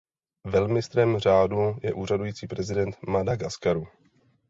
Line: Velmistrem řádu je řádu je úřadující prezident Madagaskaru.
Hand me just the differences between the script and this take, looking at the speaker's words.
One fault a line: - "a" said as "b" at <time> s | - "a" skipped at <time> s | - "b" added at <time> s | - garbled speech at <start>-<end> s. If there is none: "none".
- "řádu je" skipped at 1.9 s